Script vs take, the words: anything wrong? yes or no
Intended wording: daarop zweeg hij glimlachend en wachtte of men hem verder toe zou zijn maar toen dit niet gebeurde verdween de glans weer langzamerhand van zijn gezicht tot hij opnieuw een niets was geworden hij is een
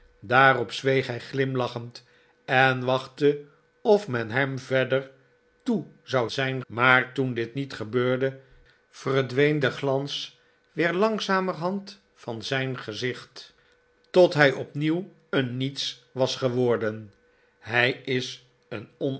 no